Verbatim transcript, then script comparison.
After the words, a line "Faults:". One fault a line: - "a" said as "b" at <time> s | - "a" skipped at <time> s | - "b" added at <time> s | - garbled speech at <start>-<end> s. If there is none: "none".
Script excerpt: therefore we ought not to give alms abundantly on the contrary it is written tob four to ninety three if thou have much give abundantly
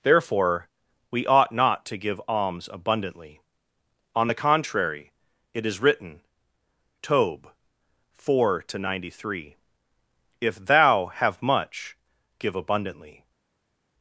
therefore we ought not to give alms abundantly on the contrary it is written tob four to ninety three if thou have much give abundantly
Faults:
none